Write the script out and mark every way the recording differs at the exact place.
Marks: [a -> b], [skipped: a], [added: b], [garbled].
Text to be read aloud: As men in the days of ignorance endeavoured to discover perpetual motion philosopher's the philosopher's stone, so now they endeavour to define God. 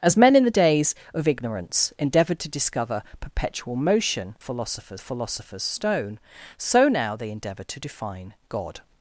As men in the days of ignorance endeavoured to discover perpetual motion philosopher's the philosopher's stone, so now they endeavour to define God.